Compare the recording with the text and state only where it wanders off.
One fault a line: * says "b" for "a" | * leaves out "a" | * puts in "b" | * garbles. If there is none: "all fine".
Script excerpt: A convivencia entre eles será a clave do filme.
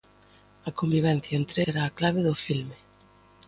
* leaves out "eles"